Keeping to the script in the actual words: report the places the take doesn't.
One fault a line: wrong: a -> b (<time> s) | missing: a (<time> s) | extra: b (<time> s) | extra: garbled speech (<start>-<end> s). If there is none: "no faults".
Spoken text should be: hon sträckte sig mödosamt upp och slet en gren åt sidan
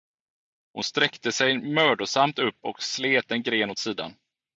no faults